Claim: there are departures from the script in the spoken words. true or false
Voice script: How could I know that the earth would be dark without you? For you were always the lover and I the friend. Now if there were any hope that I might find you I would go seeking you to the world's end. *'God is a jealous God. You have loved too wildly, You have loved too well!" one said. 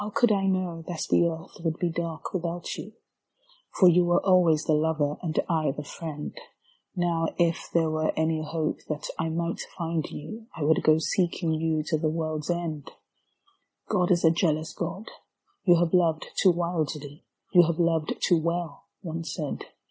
false